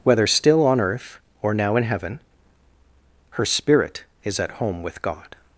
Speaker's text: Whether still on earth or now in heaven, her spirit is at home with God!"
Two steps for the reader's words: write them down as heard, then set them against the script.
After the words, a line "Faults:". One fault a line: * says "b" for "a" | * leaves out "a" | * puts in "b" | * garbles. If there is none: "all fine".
Whether still on earth or now in heaven, her spirit is at home with God!"
Faults:
all fine